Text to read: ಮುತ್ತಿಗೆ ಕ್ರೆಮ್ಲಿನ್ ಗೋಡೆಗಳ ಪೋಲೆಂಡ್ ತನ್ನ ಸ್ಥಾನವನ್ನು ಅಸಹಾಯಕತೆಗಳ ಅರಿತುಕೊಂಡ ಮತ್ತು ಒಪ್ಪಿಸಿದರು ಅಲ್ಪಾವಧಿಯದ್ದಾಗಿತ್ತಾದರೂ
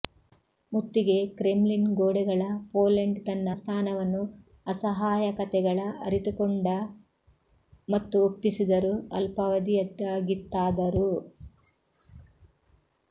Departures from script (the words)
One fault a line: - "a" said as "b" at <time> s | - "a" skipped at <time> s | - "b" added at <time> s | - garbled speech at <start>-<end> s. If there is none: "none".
none